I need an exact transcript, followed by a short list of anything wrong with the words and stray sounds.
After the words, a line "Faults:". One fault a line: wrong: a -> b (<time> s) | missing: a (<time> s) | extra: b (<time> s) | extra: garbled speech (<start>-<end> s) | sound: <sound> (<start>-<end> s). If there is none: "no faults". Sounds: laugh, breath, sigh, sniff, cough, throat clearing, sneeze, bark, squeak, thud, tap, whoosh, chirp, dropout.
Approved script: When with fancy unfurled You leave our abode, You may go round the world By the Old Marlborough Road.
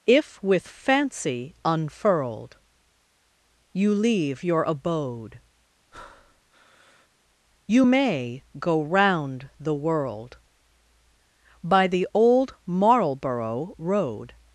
If with fancy unfurled You leave your abode, You may go round the world By the Old Marlborough Road.
Faults:
wrong: When -> If (0.1 s)
wrong: our -> your (4.4 s)
sound: breath (5.9-7.1 s)